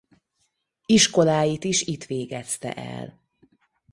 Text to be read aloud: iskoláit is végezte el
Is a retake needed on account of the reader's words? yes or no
yes